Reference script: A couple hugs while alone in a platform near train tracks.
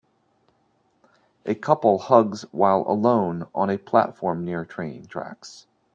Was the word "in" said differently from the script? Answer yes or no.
yes